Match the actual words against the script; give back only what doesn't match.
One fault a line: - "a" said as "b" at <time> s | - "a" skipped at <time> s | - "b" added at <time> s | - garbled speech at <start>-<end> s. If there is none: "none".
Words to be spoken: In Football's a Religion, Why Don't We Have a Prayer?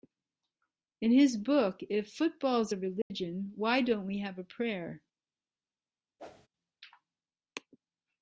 - "his book If" added at 1.1 s